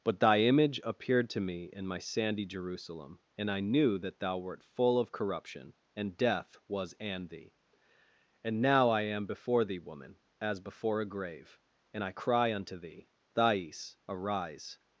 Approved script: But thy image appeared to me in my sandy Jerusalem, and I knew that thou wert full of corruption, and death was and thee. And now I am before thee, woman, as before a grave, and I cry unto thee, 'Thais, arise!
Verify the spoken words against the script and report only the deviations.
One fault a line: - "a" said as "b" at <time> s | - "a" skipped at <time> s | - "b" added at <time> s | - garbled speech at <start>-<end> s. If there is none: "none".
none